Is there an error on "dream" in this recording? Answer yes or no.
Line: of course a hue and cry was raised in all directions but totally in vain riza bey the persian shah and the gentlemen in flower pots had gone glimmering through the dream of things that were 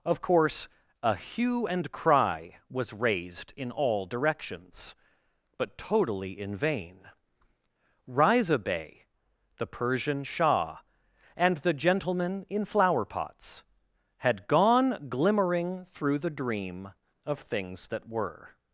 no